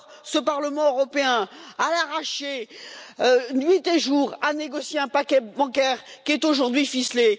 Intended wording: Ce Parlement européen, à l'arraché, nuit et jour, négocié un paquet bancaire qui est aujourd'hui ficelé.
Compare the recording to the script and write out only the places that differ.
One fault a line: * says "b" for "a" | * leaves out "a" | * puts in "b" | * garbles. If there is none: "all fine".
* puts in "a"